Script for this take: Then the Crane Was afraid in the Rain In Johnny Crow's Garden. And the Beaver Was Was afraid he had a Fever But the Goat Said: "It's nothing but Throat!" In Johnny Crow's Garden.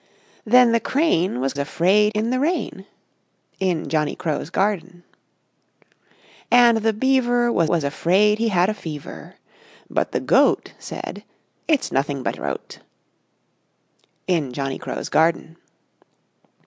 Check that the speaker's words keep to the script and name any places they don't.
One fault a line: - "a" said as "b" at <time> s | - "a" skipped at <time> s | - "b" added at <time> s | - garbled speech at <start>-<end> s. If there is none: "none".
none